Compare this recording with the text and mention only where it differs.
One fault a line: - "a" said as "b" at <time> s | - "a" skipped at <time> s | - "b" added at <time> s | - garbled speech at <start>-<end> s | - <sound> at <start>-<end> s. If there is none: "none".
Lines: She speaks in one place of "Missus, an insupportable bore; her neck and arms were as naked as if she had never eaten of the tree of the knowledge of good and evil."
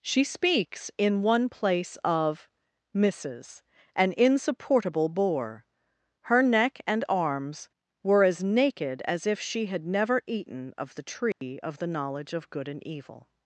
- dropout at 11.3-11.4 s